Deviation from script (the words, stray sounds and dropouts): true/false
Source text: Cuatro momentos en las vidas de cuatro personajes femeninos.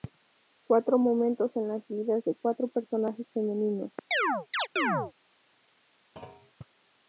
true